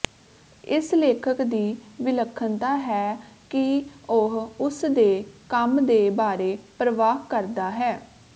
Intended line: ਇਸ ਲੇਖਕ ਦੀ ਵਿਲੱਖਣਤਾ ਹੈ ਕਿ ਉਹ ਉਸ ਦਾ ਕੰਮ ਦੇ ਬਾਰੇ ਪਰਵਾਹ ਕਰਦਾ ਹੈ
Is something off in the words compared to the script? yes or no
yes